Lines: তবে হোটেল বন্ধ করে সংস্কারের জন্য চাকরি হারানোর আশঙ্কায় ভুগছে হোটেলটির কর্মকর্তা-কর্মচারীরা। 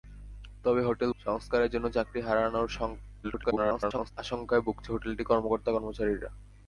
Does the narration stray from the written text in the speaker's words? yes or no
yes